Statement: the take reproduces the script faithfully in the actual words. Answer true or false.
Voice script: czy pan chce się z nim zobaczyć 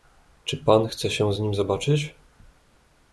true